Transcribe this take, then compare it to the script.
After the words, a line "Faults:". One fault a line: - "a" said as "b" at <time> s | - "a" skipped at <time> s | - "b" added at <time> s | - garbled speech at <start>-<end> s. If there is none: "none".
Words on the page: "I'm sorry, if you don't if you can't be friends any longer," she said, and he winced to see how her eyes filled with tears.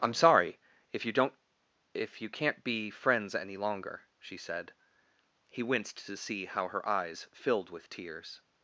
"I'm sorry, if you don't if you can't be friends any longer," she said, he winced to see how her eyes filled with tears.
Faults:
- "and" skipped at 4.7 s